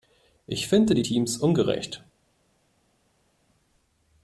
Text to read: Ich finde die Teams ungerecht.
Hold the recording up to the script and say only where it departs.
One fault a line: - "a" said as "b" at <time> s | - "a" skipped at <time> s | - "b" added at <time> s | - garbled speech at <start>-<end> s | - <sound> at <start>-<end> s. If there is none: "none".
none